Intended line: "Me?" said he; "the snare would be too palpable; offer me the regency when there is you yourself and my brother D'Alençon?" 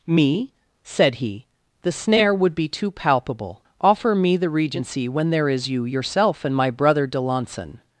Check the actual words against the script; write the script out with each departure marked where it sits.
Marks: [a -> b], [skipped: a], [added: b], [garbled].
"Me?" said he; "the snare would be too palpable; offer me the regency when there is you yourself and my brother D'Alençon?"